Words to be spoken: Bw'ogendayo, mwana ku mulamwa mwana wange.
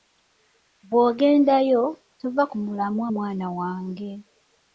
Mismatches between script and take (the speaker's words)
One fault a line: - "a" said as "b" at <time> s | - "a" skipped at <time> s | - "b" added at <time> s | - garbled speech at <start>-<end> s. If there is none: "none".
- "mwana" said as "tova" at 2.2 s